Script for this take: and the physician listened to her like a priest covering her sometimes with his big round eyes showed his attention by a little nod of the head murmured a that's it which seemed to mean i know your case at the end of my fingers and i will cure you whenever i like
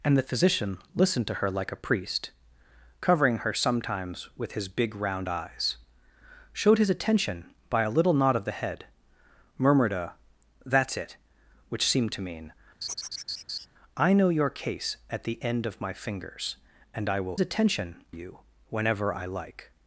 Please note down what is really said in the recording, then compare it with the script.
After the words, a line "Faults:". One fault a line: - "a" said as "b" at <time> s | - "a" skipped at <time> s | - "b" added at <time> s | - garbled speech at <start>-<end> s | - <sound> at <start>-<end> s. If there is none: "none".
and the physician listened to her like a priest covering her sometimes with his big round eyes showed his attention by a little nod of the head murmured a that's it which seemed to mean i know your case at the end of my fingers and i will attention you whenever i like
Faults:
- laugh at 12.8-13.7 s
- "cure" said as "attention" at 17.4 s